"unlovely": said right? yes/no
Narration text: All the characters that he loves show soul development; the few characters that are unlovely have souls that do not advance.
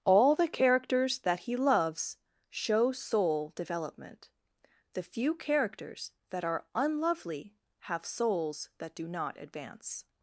yes